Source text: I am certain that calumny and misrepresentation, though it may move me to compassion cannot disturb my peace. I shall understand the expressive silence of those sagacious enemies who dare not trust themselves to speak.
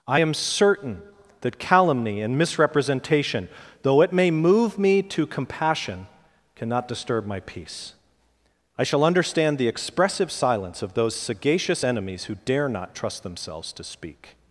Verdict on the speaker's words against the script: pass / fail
pass